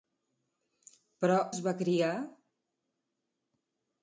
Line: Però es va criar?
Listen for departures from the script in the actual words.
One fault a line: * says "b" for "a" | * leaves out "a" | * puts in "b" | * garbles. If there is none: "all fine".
all fine